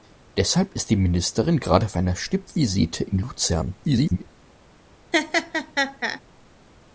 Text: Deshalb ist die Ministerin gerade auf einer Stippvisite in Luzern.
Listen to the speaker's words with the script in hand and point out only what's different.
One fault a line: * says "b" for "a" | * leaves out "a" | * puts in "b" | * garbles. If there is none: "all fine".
* garbles